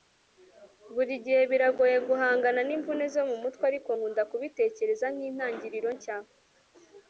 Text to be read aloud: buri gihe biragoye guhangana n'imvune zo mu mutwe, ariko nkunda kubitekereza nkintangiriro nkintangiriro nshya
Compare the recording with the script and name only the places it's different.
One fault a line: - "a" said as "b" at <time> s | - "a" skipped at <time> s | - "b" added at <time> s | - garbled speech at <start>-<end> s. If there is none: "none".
- "nkintangiriro" skipped at 5.9 s